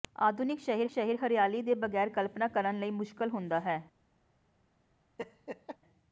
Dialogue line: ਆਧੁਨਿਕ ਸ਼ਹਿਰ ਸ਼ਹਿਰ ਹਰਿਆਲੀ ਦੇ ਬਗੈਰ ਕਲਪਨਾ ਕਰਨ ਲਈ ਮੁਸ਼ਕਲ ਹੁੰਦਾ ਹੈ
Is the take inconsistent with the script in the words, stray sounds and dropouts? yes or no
yes